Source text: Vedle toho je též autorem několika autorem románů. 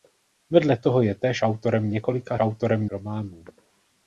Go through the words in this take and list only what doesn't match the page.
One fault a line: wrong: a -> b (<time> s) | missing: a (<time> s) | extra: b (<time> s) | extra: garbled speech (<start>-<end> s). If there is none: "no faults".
no faults